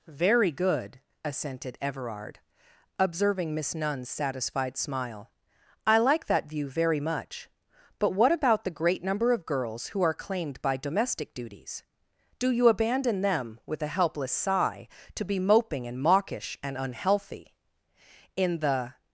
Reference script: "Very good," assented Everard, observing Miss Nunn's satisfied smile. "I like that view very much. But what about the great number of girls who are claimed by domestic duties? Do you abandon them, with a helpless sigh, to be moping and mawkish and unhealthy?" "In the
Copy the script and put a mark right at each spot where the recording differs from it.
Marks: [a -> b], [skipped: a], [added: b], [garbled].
"Very good," assented Everard, observing Miss Nunn's satisfied smile. "I like that view very much. But what about the great number of girls who are claimed by domestic duties? Do you abandon them, with a helpless sigh, to be moping and mawkish and unhealthy?" "In the